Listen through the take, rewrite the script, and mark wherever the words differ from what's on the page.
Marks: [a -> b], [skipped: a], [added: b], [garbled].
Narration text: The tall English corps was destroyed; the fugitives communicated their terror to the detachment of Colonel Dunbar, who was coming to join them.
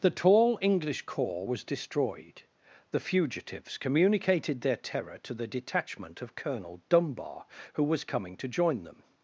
The tall English corps was destroyed; the fugitives communicated their terror to the detachment of Colonel Dunbar, who was coming to join them.